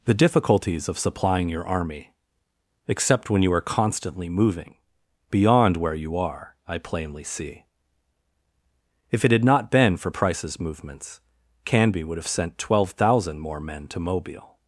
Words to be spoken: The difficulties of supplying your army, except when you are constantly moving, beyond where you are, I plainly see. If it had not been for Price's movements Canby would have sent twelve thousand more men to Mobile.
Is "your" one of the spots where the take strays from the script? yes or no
no